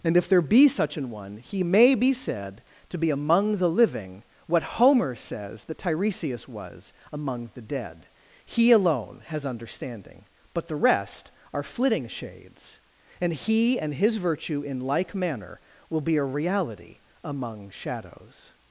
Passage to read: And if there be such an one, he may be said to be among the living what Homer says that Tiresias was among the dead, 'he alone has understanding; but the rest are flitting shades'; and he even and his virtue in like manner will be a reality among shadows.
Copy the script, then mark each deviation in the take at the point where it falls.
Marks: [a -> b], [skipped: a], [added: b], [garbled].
And if there be such an one, he may be said to be among the living what Homer says that Tiresias was among the dead, 'he alone has understanding; but the rest are flitting shades'; and he [skipped: even] and his virtue in like manner will be a reality among shadows.